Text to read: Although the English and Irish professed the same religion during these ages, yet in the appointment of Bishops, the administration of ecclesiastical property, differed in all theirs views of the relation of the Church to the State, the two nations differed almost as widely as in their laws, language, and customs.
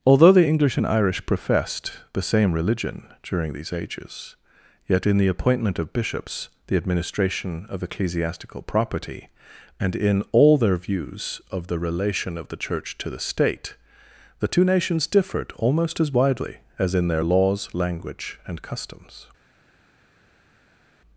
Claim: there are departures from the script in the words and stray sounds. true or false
true